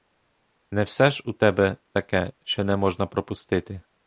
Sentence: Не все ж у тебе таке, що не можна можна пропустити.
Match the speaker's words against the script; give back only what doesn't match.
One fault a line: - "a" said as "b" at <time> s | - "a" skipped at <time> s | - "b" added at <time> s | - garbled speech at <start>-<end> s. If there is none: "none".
- "можна" skipped at 3.1 s